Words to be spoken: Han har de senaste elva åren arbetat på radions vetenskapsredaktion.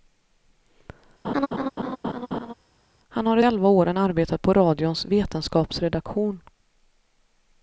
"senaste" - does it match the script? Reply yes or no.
no